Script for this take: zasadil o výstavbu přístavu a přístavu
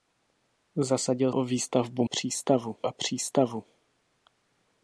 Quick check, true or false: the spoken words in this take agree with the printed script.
true